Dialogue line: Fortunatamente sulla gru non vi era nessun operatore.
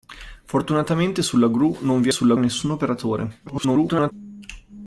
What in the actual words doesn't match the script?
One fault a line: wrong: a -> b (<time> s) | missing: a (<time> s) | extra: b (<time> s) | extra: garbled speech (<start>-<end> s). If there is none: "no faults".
wrong: era -> sulla (2.1 s)
extra: garbled speech (3.5-4.1 s)